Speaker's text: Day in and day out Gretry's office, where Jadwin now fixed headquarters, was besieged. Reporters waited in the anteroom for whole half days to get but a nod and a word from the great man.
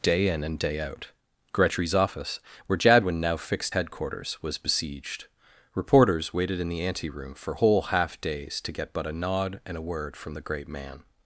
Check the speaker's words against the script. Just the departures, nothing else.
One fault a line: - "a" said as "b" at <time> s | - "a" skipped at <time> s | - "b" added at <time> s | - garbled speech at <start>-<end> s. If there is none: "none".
none